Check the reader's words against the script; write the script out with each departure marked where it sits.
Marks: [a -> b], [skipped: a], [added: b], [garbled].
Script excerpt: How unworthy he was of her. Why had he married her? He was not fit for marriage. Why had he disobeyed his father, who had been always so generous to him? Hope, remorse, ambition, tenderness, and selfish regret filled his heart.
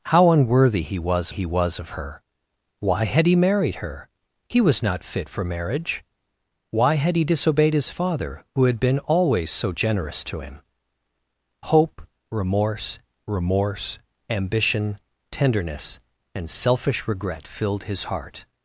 How unworthy he was [added: he was] of her. Why had he married her? He was not fit for marriage. Why had he disobeyed his father, who had been always so generous to him? Hope, remorse, [added: remorse] ambition, tenderness, and selfish regret filled his heart.